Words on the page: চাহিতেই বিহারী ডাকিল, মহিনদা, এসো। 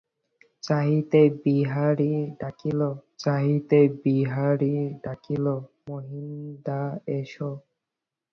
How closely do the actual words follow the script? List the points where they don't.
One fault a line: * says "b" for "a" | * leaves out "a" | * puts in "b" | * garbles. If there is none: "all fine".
* puts in "চাহিতেই বিহারী ডাকিল"